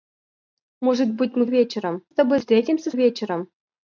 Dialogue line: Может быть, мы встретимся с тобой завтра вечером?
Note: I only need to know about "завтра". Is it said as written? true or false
false